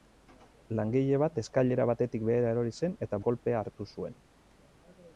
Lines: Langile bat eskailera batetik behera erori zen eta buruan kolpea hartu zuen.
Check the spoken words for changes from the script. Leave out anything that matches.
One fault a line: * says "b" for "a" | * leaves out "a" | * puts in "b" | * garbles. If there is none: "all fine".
* leaves out "buruan"